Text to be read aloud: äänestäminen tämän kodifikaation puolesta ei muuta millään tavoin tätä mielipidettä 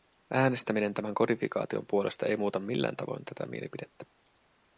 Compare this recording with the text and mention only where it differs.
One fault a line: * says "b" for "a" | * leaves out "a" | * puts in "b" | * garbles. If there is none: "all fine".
all fine